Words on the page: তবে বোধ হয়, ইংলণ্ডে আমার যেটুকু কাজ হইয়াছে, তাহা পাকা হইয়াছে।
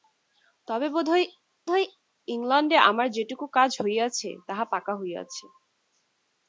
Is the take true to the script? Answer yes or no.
no